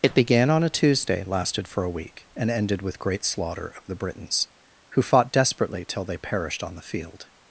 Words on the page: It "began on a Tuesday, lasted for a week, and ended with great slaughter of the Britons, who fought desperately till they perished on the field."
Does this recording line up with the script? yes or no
yes